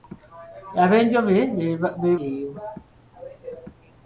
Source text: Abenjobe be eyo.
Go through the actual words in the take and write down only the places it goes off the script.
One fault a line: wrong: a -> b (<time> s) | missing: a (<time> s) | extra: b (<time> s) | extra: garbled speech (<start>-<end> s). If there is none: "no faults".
no faults